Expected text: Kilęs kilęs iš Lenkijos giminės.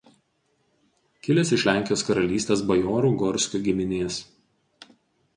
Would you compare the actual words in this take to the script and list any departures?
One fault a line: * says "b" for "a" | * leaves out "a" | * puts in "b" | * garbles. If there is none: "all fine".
* leaves out "kilęs"
* puts in "karalystės bajorų Gorskių"